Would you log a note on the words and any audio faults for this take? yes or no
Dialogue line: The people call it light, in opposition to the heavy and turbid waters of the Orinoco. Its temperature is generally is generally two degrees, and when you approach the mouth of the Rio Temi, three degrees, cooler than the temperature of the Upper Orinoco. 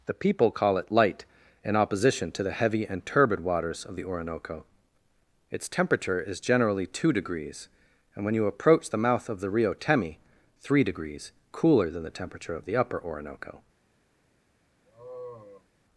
yes